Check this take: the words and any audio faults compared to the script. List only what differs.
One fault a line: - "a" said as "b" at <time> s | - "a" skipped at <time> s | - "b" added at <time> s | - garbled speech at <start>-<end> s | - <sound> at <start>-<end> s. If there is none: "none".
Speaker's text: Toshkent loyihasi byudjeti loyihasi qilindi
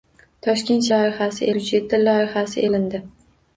none